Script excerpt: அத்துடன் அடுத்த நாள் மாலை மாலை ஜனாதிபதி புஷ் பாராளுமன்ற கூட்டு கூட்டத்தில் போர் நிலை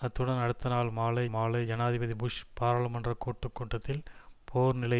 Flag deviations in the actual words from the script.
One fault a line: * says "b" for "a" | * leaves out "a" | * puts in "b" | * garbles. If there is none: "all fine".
all fine